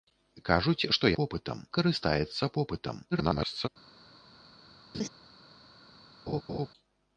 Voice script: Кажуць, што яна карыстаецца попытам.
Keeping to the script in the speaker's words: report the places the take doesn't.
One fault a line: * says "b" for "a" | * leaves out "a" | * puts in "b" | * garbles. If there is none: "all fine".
* says "попытам" for "яна"
* garbles